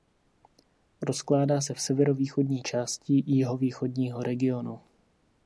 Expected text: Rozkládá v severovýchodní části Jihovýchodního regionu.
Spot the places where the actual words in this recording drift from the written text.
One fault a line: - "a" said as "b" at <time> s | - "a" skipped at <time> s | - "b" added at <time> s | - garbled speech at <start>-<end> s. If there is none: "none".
- "se" added at 1.6 s